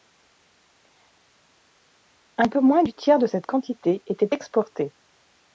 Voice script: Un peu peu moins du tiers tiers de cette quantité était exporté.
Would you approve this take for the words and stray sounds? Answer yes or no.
no